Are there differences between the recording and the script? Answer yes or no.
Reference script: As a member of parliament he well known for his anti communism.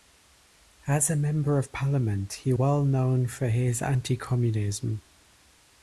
no